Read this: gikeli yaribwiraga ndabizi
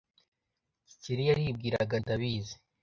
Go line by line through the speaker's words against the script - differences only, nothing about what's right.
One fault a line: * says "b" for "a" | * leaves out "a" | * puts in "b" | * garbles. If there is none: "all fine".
all fine